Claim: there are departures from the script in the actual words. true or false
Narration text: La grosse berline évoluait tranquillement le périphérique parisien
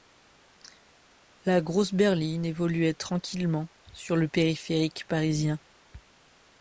true